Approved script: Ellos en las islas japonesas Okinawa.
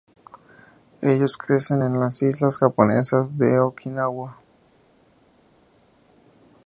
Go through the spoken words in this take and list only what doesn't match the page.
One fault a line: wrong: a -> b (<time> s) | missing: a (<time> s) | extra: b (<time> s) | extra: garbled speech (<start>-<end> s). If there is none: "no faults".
extra: crecen (1.4 s)
extra: de (3.4 s)